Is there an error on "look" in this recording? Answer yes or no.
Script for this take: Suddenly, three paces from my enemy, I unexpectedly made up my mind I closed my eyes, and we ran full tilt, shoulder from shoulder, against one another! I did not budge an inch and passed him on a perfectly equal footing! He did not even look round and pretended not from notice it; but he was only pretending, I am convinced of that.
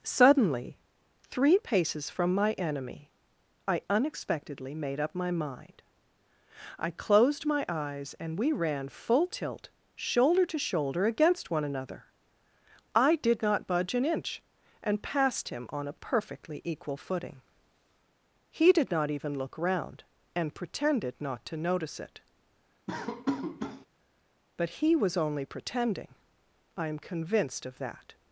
no